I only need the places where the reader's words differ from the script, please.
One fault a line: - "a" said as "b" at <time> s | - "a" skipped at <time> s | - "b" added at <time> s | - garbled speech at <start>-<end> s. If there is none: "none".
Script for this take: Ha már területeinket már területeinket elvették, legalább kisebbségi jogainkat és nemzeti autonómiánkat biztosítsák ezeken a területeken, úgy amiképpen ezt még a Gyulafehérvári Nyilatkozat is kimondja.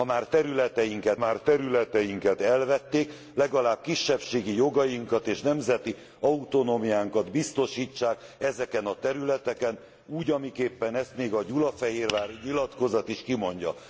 none